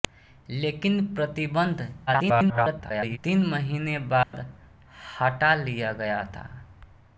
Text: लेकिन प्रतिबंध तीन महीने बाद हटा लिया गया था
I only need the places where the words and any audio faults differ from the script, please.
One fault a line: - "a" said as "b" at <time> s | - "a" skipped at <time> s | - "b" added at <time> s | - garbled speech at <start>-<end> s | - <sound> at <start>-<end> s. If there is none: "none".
- garbled speech at 2.1-3.2 s
- dropout at 4.2-4.3 s